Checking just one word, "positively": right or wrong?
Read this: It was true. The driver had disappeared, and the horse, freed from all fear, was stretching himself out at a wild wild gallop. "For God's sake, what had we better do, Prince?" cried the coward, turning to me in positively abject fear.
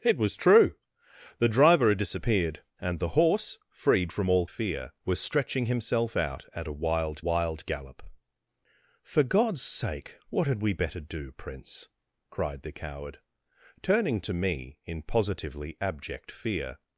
right